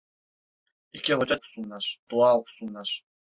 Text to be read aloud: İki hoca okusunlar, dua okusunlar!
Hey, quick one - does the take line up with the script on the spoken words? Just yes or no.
yes